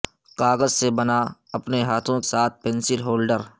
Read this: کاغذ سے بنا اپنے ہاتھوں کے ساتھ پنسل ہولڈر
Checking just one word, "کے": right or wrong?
wrong